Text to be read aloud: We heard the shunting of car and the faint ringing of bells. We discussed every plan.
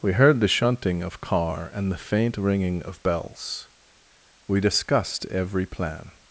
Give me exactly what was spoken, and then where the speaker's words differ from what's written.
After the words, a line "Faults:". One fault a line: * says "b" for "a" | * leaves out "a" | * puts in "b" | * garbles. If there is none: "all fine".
We heard the shunting of car and the faint ringing of bells. We discussed every plan.
Faults:
all fine